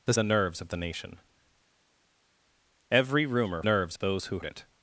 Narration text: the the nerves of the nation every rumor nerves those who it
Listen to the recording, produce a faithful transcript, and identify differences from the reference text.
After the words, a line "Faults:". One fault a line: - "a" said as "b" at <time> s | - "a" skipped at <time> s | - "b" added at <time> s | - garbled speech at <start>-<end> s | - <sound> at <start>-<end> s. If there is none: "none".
the the nerves of the nation every rumor nerves those who it
Faults:
none